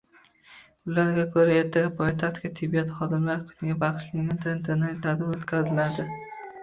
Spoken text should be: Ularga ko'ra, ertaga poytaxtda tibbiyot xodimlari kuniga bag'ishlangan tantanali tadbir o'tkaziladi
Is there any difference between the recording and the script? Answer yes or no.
no